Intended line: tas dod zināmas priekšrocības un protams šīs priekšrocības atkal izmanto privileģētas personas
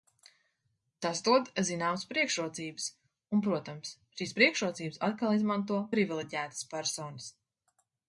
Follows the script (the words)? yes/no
yes